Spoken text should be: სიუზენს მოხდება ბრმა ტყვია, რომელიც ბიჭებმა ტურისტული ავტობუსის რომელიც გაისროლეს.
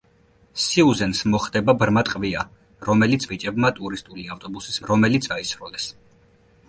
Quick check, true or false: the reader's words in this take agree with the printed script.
true